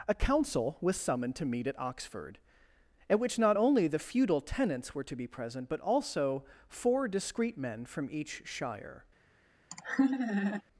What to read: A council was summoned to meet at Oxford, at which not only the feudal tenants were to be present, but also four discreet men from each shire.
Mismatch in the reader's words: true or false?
false